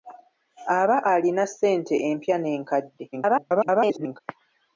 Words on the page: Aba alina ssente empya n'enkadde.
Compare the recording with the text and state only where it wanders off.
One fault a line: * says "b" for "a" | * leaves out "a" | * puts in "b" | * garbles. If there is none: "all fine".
* garbles